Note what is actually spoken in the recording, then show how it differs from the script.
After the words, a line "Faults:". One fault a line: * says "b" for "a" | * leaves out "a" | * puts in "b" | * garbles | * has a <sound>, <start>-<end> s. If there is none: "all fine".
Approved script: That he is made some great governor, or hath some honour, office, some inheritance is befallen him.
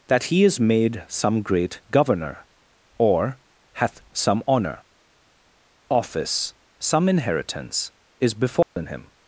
That he is made some great governor, or hath some honour, office, some inheritance is befallen him.
Faults:
* has a dropout, 8.6-8.8 s